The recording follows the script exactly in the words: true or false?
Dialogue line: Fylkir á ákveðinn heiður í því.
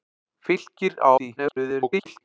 false